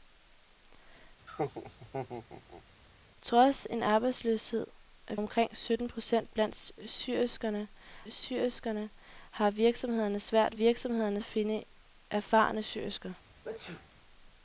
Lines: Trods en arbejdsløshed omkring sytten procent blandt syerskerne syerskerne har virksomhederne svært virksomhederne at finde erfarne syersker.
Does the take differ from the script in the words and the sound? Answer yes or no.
yes